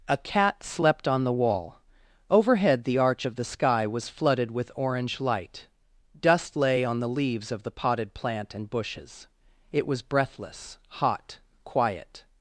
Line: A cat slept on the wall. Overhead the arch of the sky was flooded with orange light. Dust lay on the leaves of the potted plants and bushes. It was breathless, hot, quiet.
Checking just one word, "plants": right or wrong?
wrong